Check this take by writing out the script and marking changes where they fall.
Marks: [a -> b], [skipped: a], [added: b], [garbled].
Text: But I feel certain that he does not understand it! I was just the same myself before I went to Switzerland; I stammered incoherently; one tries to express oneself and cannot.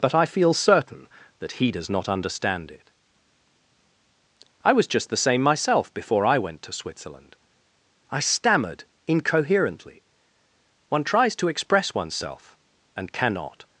But I feel certain that he does not understand it! I was just the same myself before I went to Switzerland; I stammered incoherently; one tries to express oneself and cannot.